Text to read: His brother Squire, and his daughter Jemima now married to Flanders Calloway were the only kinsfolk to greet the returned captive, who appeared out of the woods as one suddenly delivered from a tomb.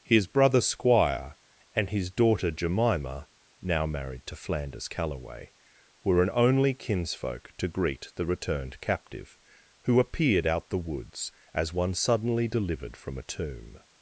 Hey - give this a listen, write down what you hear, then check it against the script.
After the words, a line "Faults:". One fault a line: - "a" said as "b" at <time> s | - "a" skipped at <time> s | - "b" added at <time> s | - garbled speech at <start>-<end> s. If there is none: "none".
His brother Squire, and his daughter Jemima now married to Flanders Calloway were an only kinsfolk to greet the returned captive, who appeared out the woods as one suddenly delivered from a tomb.
Faults:
- "the" said as "an" at 6.2 s
- "of" skipped at 10.7 s